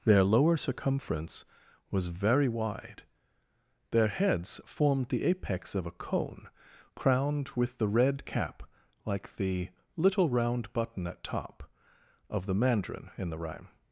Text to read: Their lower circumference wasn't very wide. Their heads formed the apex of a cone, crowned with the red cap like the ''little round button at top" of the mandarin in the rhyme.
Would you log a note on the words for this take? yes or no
yes